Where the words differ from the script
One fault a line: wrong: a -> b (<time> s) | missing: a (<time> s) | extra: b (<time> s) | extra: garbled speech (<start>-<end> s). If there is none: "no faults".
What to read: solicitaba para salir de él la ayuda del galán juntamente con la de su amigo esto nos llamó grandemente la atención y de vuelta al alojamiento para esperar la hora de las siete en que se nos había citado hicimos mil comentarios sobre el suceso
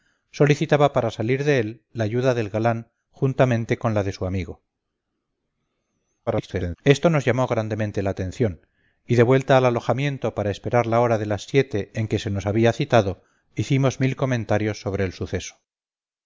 extra: garbled speech (6.3-6.8 s)